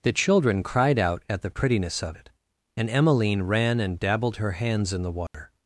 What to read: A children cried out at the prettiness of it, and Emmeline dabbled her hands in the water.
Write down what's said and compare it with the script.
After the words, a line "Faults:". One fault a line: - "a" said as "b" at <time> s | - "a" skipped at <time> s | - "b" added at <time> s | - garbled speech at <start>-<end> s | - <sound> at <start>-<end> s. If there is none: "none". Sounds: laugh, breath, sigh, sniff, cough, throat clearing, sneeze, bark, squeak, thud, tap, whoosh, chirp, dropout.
The children cried out at the prettiness of it, and Emmeline ran and dabbled her hands in the water.
Faults:
- "A" said as "The" at 0.0 s
- "ran and" added at 3.4 s
- dropout at 5.3-5.3 s